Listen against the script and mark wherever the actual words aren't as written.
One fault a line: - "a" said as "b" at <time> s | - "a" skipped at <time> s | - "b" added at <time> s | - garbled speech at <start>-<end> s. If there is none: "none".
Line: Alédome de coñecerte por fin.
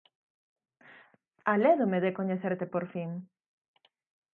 none